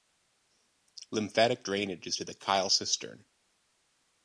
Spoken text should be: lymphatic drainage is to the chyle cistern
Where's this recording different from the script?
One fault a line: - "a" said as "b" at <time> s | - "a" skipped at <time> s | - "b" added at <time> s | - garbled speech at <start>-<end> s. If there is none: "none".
none